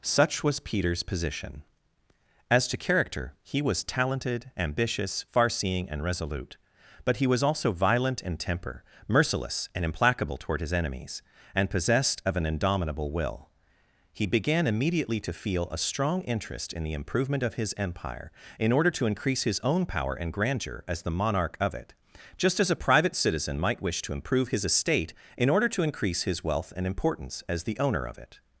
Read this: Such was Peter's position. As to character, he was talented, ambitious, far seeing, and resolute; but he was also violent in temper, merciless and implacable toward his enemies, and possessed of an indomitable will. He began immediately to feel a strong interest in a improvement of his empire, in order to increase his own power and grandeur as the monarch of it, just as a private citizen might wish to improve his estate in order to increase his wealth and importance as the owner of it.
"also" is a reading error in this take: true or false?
false